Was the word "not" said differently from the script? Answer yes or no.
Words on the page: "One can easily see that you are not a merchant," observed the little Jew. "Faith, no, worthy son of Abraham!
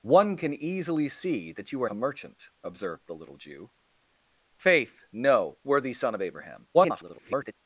yes